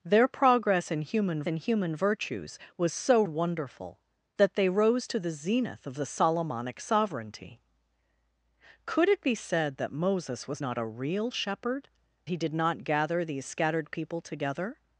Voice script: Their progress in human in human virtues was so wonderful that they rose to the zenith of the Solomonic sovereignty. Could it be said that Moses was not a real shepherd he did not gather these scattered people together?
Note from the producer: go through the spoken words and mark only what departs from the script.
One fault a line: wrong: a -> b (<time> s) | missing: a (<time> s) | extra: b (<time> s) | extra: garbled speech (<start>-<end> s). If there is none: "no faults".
no faults